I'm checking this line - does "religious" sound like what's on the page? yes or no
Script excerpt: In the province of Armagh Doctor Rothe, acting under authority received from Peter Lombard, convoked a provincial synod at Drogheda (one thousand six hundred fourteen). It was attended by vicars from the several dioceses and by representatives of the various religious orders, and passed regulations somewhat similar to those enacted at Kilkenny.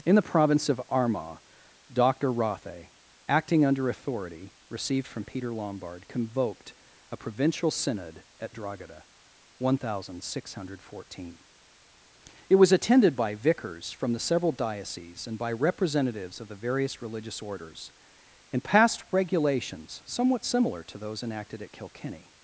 yes